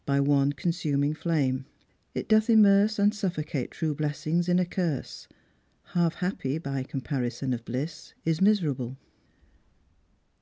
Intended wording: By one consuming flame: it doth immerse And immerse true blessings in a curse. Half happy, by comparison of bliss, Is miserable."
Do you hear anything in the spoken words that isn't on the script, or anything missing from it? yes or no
yes